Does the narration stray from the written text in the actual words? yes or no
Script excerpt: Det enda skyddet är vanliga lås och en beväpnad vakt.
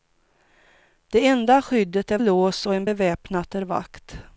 yes